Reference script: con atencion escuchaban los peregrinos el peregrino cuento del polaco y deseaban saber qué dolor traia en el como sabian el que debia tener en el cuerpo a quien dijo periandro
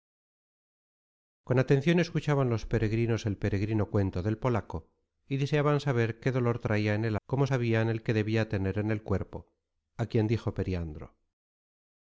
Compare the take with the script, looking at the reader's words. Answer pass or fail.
pass